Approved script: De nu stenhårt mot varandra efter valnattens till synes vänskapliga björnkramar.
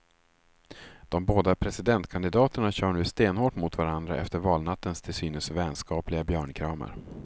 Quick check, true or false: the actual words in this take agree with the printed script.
false